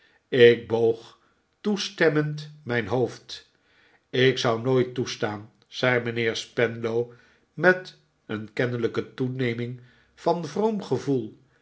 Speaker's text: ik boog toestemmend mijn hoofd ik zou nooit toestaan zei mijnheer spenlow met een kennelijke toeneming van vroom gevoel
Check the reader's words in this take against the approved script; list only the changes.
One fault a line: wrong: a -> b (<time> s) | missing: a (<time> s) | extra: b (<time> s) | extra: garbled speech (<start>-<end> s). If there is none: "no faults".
no faults